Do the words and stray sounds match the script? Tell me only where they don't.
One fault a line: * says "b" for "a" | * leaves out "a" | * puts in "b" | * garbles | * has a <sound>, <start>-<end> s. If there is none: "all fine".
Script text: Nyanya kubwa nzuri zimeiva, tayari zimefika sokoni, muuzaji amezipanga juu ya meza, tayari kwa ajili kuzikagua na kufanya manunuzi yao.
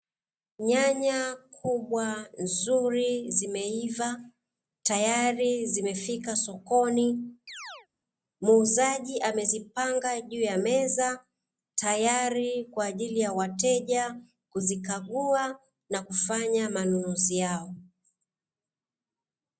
* has a chirp, 7.5-7.9 s
* puts in "ya wateja"